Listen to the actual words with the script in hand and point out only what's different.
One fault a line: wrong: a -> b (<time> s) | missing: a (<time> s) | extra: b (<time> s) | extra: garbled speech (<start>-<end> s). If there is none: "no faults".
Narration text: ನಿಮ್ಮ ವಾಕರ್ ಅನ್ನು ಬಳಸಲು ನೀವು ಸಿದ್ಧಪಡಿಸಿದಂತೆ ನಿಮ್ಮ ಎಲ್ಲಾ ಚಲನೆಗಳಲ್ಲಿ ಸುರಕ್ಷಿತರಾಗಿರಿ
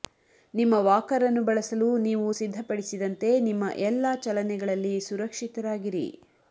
no faults